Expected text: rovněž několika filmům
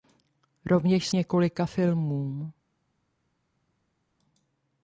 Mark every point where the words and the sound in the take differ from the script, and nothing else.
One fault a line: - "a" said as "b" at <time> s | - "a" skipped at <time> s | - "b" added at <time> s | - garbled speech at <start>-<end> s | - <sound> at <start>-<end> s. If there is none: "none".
none